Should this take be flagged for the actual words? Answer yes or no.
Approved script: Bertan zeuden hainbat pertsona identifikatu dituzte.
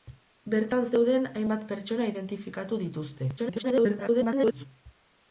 yes